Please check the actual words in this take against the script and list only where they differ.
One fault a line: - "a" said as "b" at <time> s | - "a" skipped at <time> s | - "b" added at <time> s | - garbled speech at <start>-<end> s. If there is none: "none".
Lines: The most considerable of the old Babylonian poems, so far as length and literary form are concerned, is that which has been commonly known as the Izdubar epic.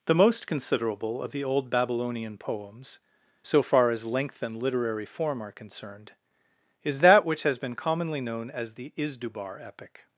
none